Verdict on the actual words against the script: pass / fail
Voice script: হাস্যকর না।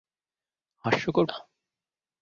pass